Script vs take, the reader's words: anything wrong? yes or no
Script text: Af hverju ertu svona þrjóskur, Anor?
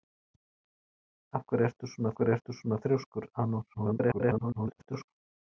yes